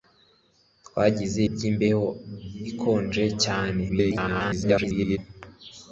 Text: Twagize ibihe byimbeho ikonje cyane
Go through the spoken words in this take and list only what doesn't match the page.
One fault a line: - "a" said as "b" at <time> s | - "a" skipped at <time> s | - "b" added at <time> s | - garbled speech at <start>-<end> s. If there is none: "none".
- "ibihe" skipped at 1.4 s
- garbled speech at 3.9-5.2 s